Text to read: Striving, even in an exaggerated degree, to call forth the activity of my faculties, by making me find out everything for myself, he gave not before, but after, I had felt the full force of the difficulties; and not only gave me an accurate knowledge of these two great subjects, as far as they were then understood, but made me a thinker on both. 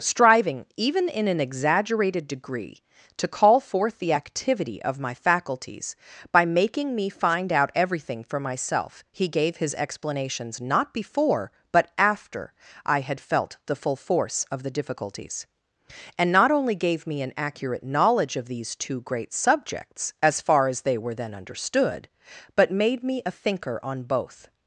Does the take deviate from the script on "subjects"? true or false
false